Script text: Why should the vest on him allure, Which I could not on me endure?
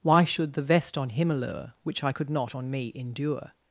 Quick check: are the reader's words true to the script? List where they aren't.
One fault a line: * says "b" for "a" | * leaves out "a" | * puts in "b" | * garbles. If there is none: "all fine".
all fine